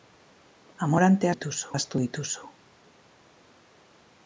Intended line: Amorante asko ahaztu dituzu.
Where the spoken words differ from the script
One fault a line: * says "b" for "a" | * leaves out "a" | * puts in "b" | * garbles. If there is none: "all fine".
* says "dituzu" for "asko"